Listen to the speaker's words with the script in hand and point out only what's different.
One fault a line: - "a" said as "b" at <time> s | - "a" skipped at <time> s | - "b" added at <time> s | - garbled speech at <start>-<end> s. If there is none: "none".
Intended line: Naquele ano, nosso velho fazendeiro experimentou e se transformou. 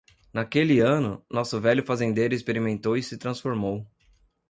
none